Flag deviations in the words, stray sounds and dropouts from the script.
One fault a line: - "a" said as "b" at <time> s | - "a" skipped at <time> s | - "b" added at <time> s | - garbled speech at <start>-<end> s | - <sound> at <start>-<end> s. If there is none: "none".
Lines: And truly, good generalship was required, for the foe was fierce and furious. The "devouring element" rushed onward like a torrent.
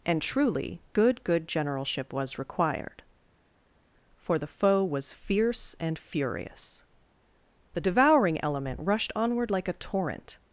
- "good" added at 1.2 s